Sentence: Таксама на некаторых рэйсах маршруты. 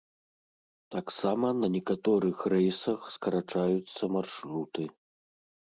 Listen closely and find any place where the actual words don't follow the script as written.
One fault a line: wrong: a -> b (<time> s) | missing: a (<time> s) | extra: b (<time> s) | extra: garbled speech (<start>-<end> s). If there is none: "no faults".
extra: скарачаюцца (3.2 s)